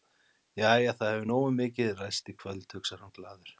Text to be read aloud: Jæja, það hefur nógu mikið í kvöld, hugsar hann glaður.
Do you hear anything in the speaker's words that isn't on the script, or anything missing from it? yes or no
yes